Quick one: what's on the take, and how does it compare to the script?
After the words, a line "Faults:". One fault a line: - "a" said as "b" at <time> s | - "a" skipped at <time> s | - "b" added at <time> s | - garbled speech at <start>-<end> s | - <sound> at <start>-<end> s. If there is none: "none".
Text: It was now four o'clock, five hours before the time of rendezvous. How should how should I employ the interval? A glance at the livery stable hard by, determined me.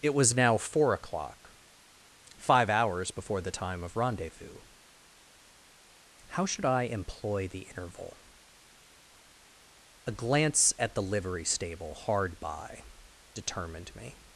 It was now four o'clock, five hours before the time of rendezvous. How should I employ the interval? A glance at the livery stable hard by, determined me.
Faults:
- "how should" skipped at 6.6 s